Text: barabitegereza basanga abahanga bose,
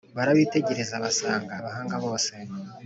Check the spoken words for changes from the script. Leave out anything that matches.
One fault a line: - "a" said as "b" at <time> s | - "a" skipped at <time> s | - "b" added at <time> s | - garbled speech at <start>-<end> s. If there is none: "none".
none